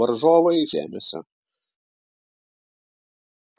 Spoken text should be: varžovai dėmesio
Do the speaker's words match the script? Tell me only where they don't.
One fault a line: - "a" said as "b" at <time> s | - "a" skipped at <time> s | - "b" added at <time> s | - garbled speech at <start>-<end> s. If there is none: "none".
none